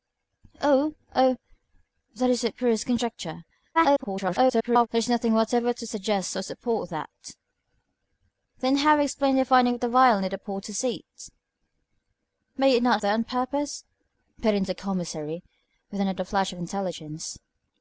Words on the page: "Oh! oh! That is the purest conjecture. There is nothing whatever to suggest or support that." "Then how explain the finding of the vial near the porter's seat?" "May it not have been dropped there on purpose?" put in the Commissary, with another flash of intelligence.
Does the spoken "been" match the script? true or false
false